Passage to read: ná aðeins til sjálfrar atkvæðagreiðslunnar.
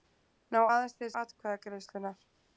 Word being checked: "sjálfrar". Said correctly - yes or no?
no